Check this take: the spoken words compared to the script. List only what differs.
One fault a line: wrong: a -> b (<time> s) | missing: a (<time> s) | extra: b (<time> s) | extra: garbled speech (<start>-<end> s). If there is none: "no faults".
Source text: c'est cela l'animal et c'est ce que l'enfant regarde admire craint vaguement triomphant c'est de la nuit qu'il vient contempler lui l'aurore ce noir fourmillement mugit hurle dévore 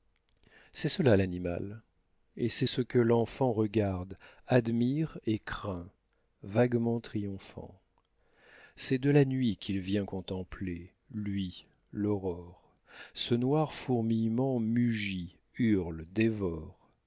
extra: et (5.2 s)